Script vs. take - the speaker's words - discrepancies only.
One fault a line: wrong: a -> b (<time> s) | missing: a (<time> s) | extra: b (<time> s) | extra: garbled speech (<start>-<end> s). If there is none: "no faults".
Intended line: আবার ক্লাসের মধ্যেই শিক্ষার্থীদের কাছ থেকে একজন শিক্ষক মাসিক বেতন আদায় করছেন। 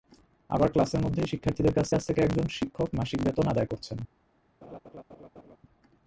extra: কাছ (1.9 s)